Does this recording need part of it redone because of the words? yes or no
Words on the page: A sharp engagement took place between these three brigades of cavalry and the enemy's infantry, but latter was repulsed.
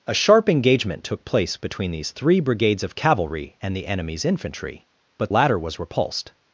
no